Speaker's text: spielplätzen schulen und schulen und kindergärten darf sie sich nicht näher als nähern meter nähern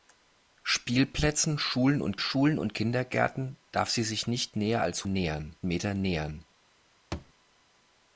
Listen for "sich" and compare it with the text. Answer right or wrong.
right